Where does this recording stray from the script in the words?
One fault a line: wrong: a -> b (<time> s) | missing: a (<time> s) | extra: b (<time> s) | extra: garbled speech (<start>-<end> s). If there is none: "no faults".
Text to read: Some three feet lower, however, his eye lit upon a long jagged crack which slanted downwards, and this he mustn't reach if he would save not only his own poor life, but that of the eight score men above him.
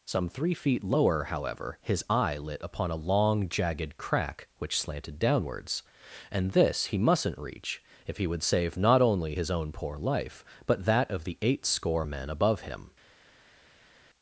no faults